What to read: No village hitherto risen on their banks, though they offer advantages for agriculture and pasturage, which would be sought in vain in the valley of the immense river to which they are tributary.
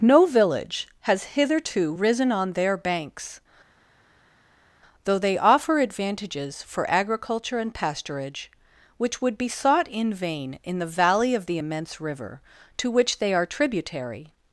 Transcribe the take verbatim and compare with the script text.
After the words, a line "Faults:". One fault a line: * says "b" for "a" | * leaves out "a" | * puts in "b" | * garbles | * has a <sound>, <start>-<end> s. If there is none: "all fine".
No village has hitherto risen on their banks, though they offer advantages for agriculture and pasturage, which would be sought in vain in the valley of the immense river to which they are tributary.
Faults:
* puts in "has"